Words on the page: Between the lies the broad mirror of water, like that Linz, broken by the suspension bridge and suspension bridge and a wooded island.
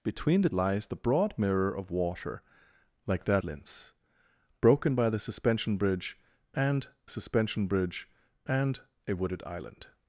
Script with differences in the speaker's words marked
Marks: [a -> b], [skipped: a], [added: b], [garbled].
Between the lies the broad mirror of water, like that Linz, broken by the suspension bridge and suspension bridge and a wooded island.